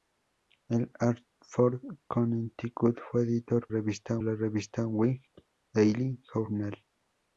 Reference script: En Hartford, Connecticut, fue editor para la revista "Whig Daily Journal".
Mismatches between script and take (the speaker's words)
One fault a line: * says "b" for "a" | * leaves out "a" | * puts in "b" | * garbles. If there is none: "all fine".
* says "revista" for "para"